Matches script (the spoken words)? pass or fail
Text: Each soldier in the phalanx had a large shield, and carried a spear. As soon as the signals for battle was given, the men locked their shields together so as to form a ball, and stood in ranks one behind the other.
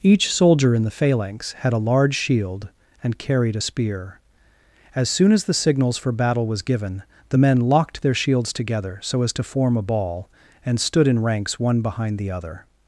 pass